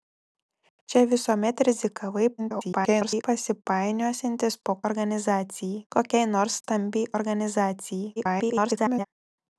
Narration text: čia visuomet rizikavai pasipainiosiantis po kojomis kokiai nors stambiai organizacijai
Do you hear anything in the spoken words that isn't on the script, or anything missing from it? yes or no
yes